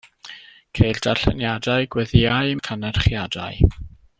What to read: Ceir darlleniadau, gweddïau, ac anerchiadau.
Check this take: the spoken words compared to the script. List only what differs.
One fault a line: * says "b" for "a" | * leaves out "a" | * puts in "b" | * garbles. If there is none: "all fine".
all fine